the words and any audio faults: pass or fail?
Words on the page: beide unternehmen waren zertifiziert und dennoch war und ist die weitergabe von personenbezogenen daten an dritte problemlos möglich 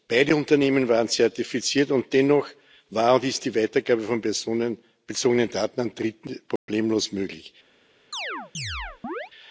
fail